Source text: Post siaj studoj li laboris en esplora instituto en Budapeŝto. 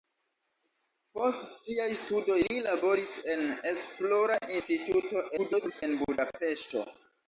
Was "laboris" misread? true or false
false